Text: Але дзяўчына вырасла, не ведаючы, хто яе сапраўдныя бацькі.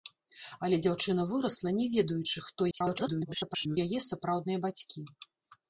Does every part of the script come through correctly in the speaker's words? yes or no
no